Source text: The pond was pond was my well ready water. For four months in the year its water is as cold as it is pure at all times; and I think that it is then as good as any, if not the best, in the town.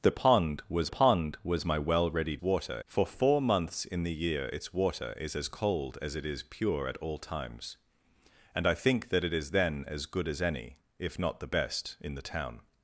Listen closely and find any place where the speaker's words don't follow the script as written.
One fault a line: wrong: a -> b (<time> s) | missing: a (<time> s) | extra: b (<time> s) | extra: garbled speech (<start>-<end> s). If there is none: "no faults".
no faults